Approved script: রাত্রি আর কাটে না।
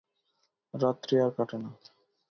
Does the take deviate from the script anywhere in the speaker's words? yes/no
no